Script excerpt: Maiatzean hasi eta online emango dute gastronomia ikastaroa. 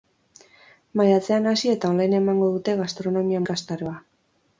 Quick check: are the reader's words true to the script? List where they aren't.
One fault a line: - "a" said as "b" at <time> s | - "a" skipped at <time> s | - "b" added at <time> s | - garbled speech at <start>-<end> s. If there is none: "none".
none